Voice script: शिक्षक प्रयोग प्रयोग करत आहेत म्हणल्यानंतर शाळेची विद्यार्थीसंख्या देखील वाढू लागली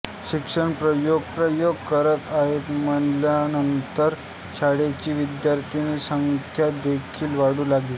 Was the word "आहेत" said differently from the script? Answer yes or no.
no